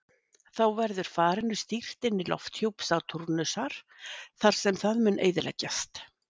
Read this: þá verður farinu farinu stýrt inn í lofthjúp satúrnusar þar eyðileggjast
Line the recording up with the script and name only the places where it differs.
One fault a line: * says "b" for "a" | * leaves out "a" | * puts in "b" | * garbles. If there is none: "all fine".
* leaves out "farinu"
* puts in "sem það mun"